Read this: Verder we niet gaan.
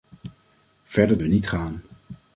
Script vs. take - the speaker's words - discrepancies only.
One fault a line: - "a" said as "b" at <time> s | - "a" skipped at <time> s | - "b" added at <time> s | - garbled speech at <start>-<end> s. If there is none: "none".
none